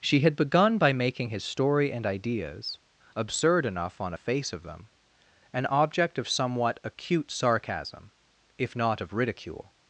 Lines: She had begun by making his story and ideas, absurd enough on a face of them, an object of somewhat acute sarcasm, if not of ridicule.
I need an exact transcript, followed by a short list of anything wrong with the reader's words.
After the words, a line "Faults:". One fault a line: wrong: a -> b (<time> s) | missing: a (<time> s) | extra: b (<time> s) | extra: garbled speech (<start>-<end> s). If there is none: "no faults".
She had begun by making his story and ideas, absurd enough on a face of them, an object of somewhat acute sarcasm, if not of ridicule.
Faults:
no faults